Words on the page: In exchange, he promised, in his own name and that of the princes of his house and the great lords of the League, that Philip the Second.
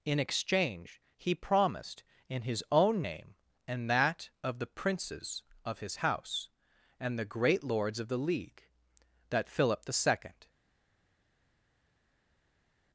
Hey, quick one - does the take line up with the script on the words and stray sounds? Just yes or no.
yes